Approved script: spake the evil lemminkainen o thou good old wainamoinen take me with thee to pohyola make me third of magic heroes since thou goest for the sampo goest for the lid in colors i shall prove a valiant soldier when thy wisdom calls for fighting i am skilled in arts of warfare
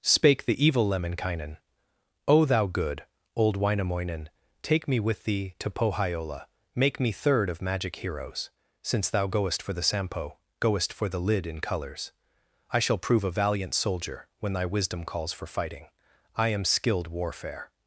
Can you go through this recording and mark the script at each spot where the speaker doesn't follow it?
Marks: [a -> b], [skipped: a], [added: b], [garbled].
spake the evil lemminkainen o thou good old wainamoinen take me with thee to pohyola make me third of magic heroes since thou goest for the sampo goest for the lid in colors i shall prove a valiant soldier when thy wisdom calls for fighting i am skilled [skipped: in arts of] warfare